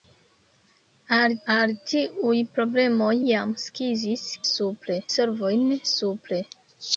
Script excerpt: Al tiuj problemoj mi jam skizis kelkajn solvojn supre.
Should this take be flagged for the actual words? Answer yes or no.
yes